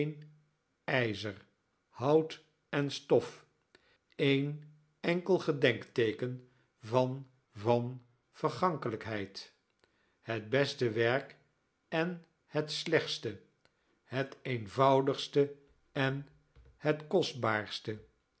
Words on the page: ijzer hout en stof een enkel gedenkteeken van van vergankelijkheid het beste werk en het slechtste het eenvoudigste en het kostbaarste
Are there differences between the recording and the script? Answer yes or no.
no